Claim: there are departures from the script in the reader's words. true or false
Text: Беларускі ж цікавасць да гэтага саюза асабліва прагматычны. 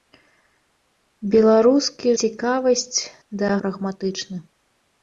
true